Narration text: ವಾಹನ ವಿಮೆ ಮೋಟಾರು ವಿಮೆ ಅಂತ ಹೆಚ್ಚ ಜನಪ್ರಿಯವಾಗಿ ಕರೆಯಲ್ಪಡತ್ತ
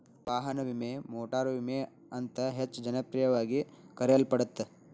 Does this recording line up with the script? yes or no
yes